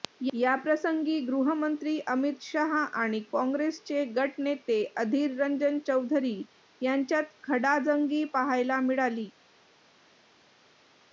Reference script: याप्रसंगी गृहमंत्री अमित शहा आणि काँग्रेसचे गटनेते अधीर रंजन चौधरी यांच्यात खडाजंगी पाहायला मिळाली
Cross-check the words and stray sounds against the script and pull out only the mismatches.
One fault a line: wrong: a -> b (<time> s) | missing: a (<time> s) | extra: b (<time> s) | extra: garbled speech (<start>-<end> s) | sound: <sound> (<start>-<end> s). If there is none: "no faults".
no faults